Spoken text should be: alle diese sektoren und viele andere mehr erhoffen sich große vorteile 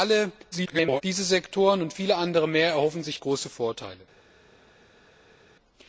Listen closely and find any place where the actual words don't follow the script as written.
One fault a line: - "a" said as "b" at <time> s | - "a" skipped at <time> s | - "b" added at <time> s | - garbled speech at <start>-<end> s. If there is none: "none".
- garbled speech at 0.5-1.0 s